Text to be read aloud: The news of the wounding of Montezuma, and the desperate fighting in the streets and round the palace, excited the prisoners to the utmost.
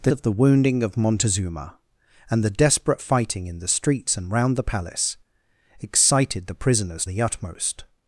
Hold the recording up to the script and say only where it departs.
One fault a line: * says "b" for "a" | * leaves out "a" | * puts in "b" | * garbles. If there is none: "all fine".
* leaves out "news"
* leaves out "to"